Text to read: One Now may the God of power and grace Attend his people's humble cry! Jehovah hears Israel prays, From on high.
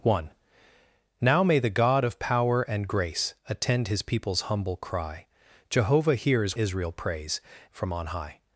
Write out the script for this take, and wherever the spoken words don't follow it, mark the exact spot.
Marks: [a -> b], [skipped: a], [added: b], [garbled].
One Now may the God of power and grace Attend his people's humble cry! Jehovah hears Israel prays, From on high.